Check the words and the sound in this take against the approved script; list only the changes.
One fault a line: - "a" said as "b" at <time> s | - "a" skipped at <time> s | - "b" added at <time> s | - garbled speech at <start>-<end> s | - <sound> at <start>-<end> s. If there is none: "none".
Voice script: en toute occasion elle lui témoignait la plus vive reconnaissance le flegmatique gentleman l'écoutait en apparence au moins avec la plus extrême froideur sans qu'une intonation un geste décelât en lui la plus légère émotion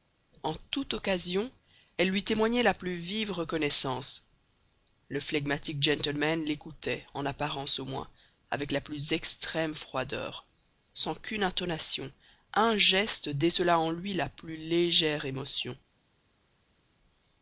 none